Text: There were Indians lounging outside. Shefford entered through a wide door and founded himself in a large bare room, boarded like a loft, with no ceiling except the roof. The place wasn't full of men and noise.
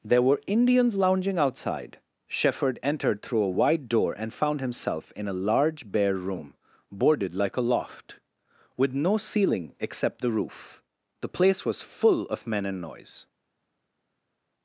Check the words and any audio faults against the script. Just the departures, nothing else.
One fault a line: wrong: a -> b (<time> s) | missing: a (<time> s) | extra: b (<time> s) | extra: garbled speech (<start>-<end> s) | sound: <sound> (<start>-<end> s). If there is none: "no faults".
wrong: founded -> found (4.3 s)
wrong: wasn't -> was (11.7 s)